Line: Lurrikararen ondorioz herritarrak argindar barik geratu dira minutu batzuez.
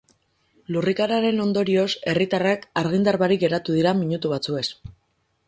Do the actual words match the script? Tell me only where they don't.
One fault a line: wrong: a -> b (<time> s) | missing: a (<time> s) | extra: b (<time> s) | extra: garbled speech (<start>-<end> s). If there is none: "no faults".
no faults